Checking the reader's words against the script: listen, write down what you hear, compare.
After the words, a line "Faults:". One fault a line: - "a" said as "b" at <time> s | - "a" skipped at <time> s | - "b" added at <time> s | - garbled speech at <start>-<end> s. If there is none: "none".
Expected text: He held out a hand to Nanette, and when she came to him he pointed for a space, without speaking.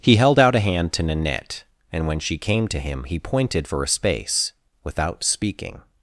He held out a hand to Nanette, and when she came to him he pointed for a space, without speaking.
Faults:
none